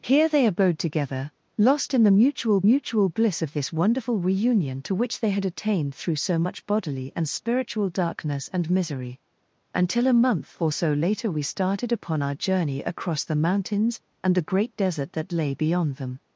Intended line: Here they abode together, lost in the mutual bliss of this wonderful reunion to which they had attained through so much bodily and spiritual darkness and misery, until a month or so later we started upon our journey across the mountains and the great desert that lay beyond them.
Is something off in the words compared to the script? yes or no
yes